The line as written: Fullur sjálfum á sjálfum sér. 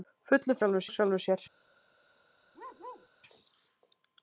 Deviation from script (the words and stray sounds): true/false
true